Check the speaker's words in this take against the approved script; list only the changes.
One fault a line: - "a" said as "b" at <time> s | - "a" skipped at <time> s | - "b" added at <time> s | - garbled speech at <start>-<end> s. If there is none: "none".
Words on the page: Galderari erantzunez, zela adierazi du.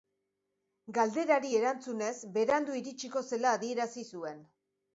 - "berandu iritsiko" added at 2.4 s
- "du" said as "zuen" at 4.2 s